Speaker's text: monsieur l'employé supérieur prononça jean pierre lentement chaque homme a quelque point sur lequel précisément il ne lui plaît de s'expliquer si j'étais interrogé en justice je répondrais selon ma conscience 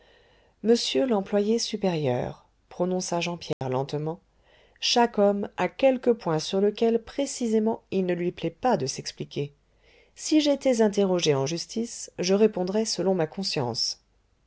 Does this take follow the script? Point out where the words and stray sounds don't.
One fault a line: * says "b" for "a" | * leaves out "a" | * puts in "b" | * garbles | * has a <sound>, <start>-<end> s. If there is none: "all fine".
* has a dropout, 3.5-3.6 s
* puts in "pas"